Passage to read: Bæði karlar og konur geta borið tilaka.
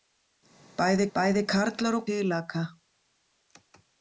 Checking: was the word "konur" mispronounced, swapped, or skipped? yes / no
yes